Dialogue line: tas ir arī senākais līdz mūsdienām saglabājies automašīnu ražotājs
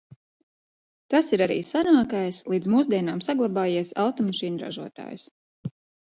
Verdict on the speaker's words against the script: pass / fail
pass